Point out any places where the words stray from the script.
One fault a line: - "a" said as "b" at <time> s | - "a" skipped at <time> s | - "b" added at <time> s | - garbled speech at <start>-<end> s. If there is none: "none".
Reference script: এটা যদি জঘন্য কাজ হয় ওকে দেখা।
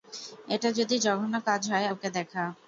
none